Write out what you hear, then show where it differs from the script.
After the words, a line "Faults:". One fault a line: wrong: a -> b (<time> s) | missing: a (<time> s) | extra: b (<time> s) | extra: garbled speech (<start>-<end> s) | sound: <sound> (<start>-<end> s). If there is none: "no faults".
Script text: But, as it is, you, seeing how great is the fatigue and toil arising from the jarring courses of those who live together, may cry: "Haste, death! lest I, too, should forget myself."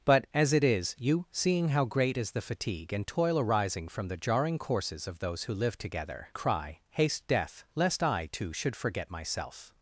But, as it is, you, seeing how great is the fatigue and toil arising from the jarring courses of those who live together, cry: "Haste, death! lest I, too, should forget myself."
Faults:
missing: may (6.3 s)